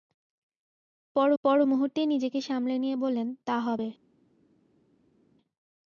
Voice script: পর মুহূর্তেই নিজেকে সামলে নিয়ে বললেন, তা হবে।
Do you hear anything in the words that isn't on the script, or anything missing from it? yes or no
yes